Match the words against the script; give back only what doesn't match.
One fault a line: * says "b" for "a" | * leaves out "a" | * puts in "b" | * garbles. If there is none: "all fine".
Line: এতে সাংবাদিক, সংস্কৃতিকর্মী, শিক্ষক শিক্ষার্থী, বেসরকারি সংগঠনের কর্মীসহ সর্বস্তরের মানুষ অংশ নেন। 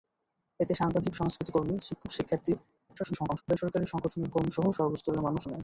* garbles
* leaves out "অংশ"